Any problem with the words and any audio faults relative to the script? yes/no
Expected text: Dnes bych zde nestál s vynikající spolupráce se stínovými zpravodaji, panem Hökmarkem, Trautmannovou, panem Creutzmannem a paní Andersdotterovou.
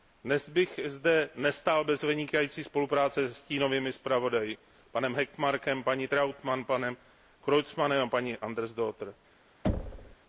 yes